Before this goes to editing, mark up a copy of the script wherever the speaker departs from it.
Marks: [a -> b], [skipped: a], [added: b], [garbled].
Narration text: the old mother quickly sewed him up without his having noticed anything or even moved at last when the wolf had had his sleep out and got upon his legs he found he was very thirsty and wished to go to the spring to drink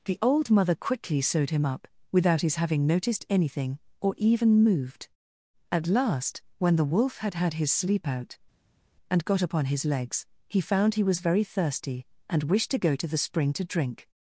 the old mother quickly sewed him up without his having noticed anything or even moved at last when the wolf had had his sleep out and got upon his legs he found he was very thirsty and wished to go to the spring to drink